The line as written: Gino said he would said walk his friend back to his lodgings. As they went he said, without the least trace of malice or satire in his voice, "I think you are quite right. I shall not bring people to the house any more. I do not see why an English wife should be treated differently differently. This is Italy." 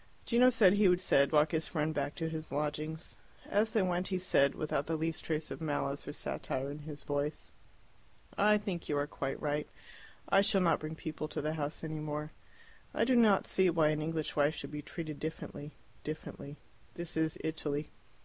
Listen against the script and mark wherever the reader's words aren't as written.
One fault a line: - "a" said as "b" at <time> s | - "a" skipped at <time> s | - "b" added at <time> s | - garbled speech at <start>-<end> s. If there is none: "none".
none